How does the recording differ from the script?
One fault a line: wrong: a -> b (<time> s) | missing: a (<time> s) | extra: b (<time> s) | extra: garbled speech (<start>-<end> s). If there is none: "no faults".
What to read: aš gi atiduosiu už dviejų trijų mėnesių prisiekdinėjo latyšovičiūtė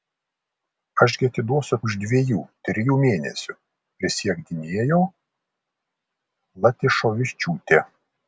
no faults